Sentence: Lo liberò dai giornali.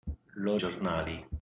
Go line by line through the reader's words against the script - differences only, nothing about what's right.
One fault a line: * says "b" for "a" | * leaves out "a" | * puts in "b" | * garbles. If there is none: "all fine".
* leaves out "liberò dai"